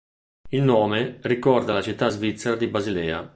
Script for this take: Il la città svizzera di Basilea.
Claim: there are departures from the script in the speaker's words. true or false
true